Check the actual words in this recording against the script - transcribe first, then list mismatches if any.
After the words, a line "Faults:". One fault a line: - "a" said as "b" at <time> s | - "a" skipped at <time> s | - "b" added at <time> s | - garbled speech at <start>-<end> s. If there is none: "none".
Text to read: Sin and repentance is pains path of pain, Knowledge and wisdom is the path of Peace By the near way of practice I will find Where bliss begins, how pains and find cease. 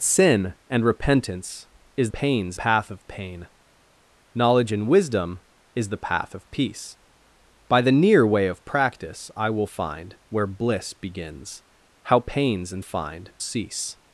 Sin and repentance is pains path of pain, Knowledge and wisdom is the path of Peace By the near way of practice I will find Where bliss begins, how pains and find cease.
Faults:
none